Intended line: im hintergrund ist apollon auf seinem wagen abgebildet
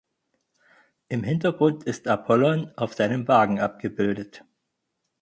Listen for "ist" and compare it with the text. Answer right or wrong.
right